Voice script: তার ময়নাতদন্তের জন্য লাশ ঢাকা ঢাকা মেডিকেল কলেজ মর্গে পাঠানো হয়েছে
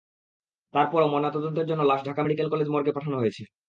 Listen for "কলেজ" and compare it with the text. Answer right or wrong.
right